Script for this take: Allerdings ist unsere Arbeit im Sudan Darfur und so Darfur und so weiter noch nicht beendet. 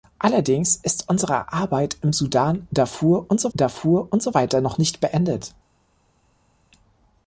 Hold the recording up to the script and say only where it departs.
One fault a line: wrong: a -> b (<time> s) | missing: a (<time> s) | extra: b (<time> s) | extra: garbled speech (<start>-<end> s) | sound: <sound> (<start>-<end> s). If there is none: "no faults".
no faults